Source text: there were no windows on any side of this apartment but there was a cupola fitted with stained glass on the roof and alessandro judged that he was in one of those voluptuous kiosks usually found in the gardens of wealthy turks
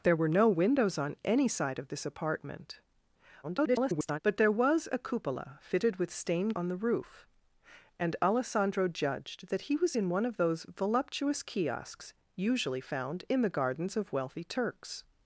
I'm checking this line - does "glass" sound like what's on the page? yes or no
no